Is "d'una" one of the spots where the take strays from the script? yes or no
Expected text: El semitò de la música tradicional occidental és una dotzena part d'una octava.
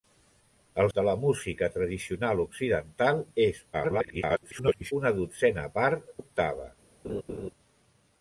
yes